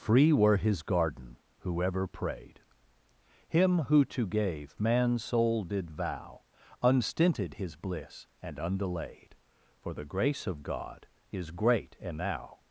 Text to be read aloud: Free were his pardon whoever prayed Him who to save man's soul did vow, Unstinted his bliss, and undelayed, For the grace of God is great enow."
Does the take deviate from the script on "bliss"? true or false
false